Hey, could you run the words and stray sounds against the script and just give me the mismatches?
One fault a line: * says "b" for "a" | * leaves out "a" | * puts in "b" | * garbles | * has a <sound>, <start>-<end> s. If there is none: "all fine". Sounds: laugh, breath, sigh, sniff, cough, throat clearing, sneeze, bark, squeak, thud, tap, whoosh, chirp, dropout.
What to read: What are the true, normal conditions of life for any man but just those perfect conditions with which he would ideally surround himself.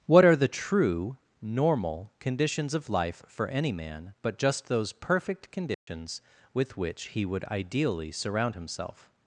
* has a dropout, 5.7-5.9 s